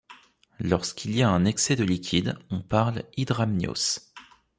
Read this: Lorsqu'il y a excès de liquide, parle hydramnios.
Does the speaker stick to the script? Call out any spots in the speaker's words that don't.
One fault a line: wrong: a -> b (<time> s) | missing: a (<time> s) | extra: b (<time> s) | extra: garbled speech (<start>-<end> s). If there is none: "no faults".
extra: un (1.3 s)
extra: on (2.5 s)